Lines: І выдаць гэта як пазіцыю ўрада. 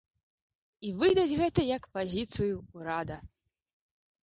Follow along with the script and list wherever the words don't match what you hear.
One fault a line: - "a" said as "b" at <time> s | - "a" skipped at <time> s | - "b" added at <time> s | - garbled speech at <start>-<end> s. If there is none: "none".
none